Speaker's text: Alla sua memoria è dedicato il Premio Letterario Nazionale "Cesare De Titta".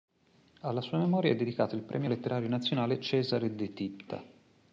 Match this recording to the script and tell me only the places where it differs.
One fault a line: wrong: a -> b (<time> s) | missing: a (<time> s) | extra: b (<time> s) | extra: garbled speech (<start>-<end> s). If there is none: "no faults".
no faults